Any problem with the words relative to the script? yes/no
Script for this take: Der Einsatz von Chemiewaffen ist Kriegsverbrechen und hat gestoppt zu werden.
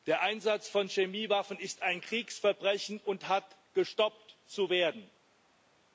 yes